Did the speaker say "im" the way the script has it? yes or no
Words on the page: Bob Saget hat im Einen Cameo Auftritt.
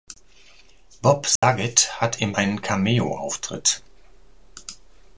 yes